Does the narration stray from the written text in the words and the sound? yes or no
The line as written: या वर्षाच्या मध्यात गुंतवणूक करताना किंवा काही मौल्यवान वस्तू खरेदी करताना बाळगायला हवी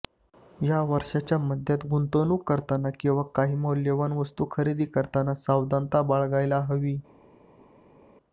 yes